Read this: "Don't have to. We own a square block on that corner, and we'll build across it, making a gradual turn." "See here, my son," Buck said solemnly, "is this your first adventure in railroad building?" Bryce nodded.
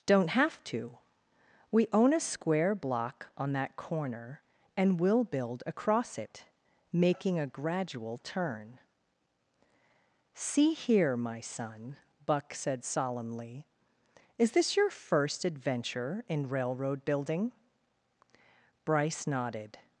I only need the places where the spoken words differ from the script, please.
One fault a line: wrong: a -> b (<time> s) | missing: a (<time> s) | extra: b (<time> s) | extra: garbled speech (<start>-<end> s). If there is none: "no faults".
no faults